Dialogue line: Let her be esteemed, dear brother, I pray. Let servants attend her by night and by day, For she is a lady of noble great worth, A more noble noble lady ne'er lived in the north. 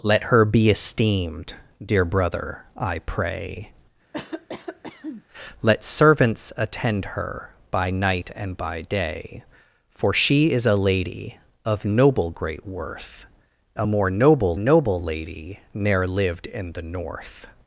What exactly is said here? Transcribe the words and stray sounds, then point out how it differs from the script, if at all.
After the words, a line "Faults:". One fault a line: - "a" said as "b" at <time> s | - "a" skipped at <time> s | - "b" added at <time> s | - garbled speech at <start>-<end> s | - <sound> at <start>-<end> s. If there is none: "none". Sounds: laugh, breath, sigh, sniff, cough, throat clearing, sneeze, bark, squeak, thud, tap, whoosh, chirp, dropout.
Let her be esteemed, dear brother, I pray. Let servants attend her by night and by day, For she is a lady of noble great worth, A more noble noble lady ne'er lived in the north.
Faults:
- cough at 4.1-5.2 s